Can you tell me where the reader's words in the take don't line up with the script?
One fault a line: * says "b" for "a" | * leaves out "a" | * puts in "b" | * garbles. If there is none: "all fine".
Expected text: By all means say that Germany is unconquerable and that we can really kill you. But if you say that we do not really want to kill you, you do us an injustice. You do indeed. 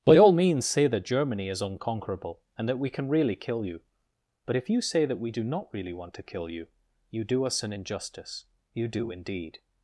all fine